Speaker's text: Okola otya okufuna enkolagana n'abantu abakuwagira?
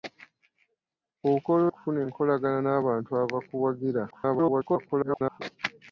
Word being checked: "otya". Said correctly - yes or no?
no